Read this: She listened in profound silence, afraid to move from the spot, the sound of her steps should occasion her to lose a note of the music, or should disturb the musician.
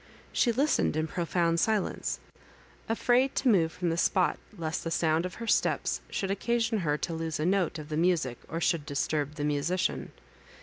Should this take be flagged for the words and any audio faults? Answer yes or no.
yes